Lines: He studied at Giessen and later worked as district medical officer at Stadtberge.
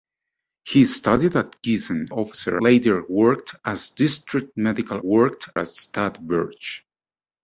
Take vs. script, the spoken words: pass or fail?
fail